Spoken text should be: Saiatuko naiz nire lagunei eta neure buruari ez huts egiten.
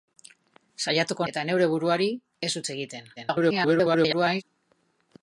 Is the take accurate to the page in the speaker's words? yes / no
no